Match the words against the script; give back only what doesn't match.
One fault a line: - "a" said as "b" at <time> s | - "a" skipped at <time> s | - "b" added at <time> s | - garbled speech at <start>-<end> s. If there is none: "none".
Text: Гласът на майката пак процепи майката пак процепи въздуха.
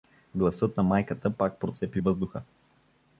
- "майката пак процепи" skipped at 2.0 s